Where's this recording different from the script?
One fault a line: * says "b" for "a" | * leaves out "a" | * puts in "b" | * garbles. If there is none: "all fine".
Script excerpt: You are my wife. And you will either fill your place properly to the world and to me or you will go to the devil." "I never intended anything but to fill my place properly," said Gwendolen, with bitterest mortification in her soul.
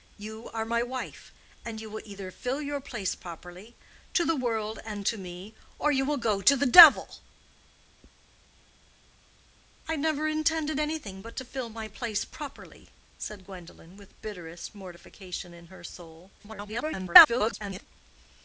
* garbles